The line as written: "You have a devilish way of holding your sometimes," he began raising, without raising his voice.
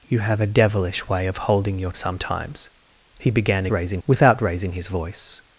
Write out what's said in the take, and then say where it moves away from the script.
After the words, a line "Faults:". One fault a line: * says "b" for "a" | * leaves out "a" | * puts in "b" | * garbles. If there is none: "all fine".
"You have a devilish way of holding your sometimes," he began raising, without raising his voice.
Faults:
all fine